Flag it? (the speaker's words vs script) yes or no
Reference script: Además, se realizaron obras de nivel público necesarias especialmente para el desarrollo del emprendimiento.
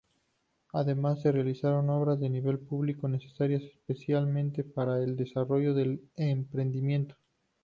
no